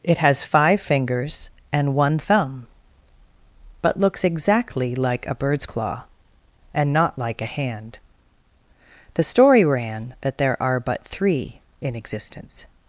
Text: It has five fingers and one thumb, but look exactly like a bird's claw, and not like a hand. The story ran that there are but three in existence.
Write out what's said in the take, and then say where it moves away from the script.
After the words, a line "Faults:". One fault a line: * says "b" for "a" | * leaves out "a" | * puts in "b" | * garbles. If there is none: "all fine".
It has five fingers and one thumb, but looks exactly like a bird's claw, and not like a hand. The story ran that there are but three in existence.
Faults:
* says "looks" for "look"